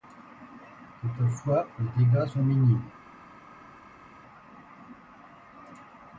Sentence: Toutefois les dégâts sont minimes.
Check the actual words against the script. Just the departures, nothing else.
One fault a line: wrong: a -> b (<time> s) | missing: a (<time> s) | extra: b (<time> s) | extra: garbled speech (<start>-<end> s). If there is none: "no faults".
no faults